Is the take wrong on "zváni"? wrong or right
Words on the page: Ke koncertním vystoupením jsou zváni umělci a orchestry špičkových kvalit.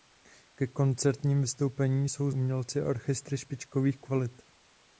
wrong